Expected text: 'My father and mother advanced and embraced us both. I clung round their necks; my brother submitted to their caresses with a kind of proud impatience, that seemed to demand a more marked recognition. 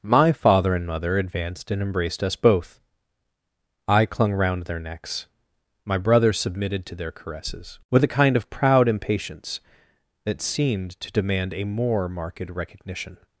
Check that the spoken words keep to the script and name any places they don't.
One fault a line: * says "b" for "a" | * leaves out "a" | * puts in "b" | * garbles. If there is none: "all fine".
all fine